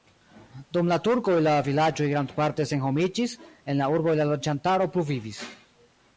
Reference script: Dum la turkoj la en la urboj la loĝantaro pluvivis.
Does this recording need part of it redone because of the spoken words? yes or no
yes